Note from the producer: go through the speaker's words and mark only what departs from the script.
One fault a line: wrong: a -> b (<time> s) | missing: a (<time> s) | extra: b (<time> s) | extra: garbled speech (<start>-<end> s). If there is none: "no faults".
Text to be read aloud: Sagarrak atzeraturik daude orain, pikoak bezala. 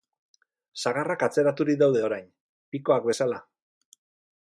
no faults